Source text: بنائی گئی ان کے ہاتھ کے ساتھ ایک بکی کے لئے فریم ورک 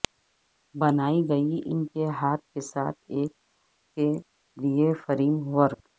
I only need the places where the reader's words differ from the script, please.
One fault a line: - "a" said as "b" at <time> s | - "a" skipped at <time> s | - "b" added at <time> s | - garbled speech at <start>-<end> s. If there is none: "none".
- "بکی" skipped at 3.3 s